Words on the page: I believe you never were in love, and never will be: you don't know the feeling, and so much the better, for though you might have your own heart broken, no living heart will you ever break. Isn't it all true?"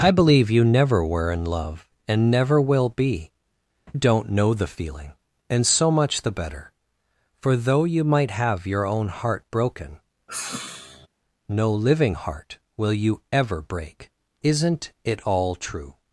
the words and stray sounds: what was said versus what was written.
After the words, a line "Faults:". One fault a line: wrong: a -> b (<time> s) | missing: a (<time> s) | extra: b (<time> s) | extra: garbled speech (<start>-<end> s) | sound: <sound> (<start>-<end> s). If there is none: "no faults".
I believe you never were in love, and never will be: don't know the feeling, and so much the better, for though you might have your own heart broken, no living heart will you ever break. Isn't it all true?"
Faults:
missing: you (3.3 s)
sound: sigh (10.3-11.1 s)